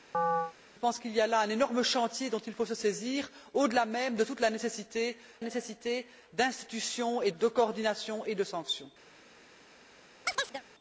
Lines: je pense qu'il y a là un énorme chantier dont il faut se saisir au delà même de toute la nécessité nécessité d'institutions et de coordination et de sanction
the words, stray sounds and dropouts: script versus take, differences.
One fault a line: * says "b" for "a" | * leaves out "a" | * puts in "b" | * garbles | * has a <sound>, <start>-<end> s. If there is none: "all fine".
* has a chirp, 0.1-0.5 s
* has a chirp, 10.2-10.6 s